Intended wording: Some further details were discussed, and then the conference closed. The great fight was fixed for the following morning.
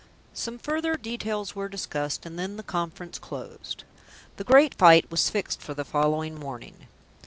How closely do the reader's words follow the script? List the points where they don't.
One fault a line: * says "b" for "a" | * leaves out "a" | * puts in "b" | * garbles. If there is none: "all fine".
all fine